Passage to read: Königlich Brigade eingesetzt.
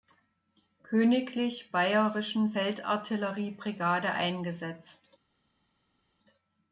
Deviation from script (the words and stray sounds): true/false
true